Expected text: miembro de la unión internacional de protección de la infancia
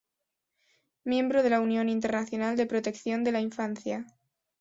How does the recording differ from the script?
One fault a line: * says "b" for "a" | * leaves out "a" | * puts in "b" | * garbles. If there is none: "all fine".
all fine